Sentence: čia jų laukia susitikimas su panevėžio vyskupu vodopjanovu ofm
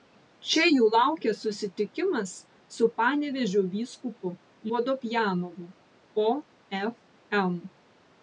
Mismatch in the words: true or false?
false